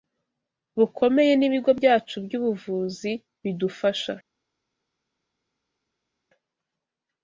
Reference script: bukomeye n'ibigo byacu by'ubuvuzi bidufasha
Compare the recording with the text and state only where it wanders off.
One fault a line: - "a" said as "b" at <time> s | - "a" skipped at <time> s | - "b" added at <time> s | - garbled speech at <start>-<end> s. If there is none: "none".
none